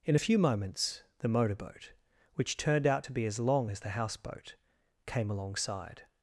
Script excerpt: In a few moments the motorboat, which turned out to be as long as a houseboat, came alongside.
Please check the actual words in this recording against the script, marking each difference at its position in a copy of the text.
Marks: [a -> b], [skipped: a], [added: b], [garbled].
In a few moments the motorboat, which turned out to be as long as [a -> the] houseboat, came alongside.